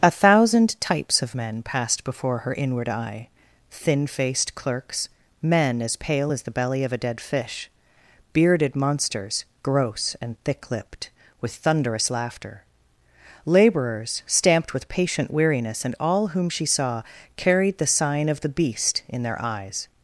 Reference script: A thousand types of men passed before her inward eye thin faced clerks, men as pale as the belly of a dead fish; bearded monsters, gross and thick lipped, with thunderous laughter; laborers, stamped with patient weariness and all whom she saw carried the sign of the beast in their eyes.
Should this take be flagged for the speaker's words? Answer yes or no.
no